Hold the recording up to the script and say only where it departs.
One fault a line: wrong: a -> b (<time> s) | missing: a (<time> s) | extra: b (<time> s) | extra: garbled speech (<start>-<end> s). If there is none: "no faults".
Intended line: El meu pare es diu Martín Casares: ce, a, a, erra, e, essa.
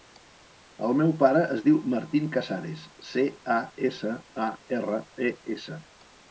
extra: essa (3.9 s)